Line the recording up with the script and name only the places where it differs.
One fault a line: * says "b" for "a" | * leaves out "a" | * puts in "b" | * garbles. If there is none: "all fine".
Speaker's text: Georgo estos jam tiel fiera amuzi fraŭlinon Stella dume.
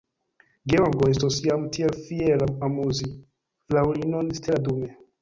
all fine